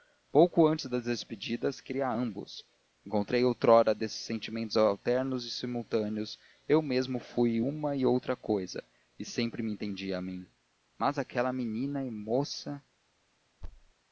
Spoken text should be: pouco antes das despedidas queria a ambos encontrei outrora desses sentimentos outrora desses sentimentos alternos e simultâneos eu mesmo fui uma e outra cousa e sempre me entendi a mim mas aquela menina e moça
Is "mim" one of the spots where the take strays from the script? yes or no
no